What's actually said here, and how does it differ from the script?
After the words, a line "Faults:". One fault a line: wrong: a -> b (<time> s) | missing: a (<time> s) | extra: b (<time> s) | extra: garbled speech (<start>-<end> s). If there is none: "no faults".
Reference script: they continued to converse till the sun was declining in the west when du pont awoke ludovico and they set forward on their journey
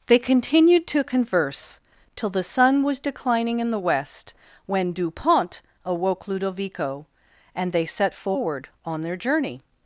they continued to converse till the sun was declining in the west when du pont awoke ludovico and they set forward on their journey
Faults:
no faults